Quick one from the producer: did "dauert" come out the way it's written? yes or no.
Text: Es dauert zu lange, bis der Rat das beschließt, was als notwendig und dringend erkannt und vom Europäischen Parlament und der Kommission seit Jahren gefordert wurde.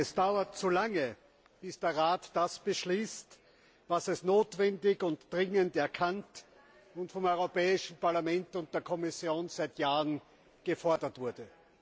yes